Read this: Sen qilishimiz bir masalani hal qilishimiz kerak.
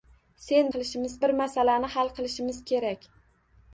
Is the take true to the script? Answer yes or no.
yes